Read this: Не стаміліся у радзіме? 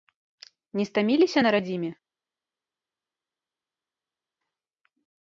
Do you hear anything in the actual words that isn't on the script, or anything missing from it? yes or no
yes